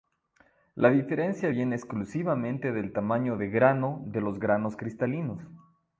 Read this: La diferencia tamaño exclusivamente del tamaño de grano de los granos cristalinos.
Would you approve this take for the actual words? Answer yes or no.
no